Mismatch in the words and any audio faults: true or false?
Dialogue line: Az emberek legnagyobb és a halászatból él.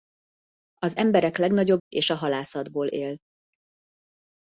false